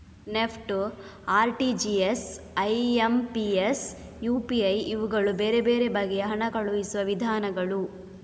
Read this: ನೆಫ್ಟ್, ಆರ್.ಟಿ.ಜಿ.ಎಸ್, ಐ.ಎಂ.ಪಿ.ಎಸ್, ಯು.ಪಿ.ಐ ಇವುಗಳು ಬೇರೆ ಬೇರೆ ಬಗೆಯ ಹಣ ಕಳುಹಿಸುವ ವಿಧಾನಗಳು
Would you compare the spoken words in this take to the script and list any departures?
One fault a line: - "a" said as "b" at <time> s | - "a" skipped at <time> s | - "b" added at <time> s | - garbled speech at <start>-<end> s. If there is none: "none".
none